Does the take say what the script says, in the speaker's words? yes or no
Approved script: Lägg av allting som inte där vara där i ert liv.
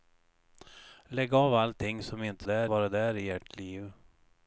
yes